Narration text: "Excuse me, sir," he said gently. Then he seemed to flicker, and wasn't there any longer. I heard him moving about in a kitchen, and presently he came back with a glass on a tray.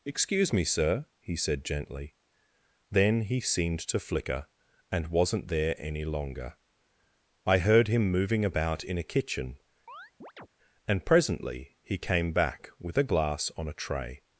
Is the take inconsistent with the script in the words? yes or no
no